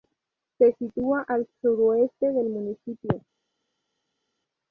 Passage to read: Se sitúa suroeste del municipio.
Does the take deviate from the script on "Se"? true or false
false